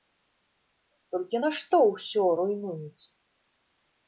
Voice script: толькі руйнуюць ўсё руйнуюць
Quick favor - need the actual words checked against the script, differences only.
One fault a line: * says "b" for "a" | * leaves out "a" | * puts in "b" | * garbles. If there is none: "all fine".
* says "нашто" for "руйнуюць"